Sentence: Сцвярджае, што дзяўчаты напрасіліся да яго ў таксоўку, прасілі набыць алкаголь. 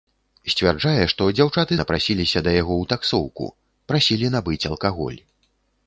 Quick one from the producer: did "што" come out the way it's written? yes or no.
yes